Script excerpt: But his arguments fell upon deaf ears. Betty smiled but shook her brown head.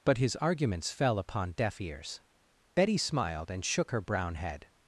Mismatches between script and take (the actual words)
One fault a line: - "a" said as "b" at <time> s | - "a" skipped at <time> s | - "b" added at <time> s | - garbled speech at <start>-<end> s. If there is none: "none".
- "but" said as "and" at 3.5 s